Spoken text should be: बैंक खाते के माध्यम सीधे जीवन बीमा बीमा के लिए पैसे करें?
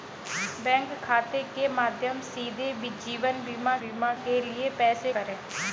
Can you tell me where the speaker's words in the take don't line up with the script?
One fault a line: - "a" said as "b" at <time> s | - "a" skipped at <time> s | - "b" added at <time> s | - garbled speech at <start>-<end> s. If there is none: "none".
none